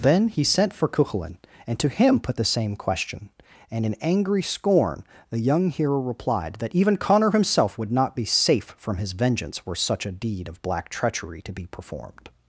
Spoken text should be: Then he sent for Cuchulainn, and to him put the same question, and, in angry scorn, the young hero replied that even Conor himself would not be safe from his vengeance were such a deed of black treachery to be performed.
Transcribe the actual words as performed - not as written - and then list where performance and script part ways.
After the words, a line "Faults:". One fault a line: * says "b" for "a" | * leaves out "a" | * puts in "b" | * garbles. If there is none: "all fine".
Then he sent for Cuchulainn, and to him put the same question, and, in angry scorn, the young hero replied that even Conor himself would not be safe from his vengeance were such a deed of black treachery to be performed.
Faults:
all fine